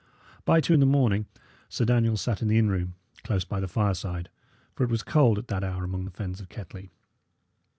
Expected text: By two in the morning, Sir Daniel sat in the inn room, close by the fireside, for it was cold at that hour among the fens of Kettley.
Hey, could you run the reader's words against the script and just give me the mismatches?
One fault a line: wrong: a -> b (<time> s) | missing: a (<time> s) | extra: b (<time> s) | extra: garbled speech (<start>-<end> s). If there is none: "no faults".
no faults